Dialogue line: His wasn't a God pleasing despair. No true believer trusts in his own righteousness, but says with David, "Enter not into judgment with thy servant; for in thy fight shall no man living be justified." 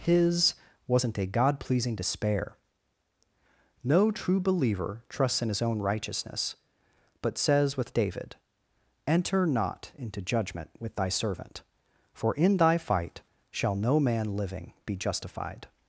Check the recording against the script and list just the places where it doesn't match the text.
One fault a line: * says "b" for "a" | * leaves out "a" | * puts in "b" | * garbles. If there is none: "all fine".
all fine